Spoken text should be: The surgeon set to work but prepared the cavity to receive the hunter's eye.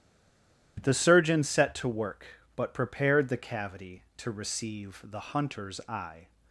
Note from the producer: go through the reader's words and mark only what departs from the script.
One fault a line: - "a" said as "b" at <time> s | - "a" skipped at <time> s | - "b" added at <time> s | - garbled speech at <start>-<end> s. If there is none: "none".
none